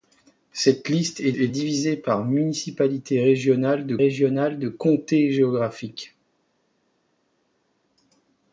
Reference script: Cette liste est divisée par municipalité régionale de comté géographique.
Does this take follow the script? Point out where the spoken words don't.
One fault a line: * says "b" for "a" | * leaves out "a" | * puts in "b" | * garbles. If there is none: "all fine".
* puts in "est"
* puts in "régionale de"